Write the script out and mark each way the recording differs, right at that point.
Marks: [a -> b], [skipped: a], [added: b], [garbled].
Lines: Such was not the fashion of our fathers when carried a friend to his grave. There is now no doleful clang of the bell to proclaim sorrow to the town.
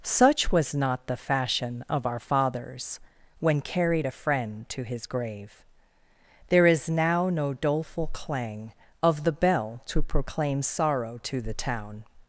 Such was not the fashion of our fathers when carried a friend to his grave. There is now no doleful clang of the bell to proclaim sorrow to the town.